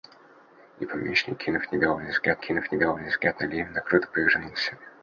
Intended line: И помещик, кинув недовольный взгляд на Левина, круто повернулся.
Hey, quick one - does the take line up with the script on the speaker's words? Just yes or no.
no